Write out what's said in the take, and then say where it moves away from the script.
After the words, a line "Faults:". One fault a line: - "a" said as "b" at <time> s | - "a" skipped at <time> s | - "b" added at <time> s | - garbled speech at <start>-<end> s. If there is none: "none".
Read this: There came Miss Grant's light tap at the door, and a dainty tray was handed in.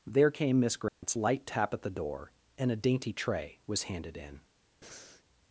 There came Miss Grant's light tap at the door, and a dainty tray was handed in.
Faults:
none